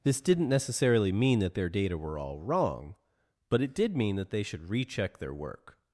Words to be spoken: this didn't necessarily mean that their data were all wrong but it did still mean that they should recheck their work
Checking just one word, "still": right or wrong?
wrong